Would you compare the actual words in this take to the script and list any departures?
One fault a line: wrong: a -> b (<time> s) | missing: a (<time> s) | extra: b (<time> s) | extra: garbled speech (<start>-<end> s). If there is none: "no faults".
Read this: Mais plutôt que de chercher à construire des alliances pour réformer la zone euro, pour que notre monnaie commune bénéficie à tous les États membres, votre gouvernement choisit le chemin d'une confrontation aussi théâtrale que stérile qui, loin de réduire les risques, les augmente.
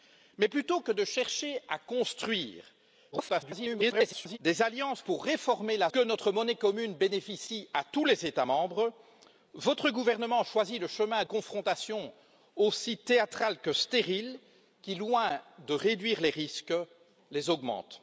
extra: garbled speech (3.1-4.4 s)
missing: zone euro pour (5.9 s)
missing: d'une (11.2 s)